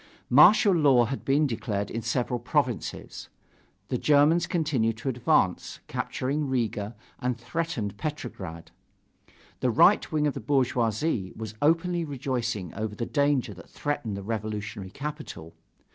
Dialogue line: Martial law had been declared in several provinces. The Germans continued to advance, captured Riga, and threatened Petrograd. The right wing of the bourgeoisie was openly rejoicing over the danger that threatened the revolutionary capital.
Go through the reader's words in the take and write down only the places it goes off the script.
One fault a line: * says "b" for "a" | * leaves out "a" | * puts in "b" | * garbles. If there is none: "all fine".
all fine